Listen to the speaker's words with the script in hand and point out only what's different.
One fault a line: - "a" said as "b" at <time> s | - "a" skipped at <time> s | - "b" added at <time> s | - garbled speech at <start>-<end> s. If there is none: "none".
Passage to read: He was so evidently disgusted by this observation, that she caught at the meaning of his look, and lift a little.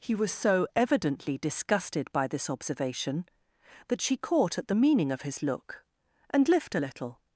none